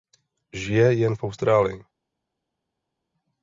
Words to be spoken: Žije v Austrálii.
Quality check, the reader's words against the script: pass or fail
fail